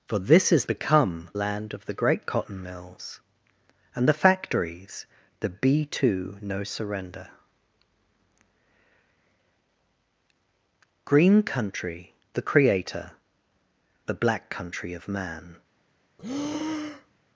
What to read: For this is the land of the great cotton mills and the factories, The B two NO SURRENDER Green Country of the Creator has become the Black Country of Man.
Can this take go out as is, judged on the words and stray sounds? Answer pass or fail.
fail